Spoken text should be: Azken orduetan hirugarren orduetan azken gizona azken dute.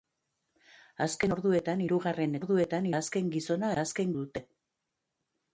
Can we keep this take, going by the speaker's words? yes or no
yes